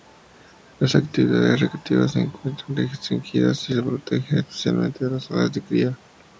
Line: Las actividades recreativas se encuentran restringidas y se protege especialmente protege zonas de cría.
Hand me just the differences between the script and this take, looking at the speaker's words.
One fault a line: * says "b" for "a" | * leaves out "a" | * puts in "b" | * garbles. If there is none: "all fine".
* says "las" for "protege"